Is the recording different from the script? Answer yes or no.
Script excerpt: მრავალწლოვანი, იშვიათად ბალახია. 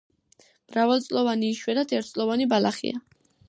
yes